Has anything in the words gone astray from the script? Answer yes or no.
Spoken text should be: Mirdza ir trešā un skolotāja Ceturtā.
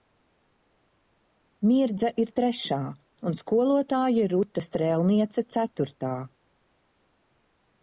yes